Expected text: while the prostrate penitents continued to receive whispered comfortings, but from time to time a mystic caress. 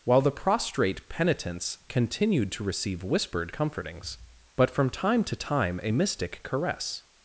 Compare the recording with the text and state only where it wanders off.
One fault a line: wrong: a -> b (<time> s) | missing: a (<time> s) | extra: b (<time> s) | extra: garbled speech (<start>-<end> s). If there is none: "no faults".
no faults